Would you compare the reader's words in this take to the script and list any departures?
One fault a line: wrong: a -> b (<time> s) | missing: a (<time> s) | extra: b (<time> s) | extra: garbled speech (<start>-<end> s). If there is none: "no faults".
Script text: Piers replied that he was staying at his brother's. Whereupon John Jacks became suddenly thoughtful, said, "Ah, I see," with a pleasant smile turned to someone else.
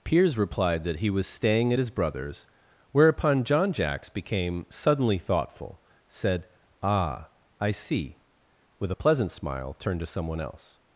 no faults